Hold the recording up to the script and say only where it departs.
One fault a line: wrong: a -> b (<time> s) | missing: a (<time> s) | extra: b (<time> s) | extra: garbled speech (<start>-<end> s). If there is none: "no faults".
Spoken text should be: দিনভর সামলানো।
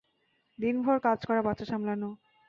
extra: কাজ করা বাচ্চা (1.0 s)